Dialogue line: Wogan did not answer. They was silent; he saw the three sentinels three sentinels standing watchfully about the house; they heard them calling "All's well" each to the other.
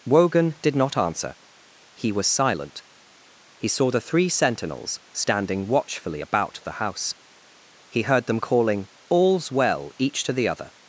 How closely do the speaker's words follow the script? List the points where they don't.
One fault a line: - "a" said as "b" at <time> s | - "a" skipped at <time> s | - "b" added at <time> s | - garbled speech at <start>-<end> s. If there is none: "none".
- "They" said as "He" at 1.9 s
- "three sentinels" skipped at 5.0 s
- "they" said as "he" at 7.9 s